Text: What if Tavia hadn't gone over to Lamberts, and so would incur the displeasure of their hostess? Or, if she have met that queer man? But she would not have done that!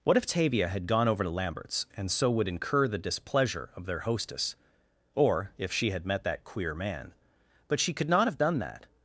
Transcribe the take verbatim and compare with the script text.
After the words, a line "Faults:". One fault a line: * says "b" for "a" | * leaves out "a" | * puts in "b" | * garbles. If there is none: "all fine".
What if Tavia had gone over to Lamberts, and so would incur the displeasure of their hostess? Or, if she had met that queer man? But she could not have done that!
Faults:
* says "had" for "hadn't"
* says "had" for "have"
* says "could" for "would"